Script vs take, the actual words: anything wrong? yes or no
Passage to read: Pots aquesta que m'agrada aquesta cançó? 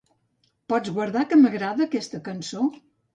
yes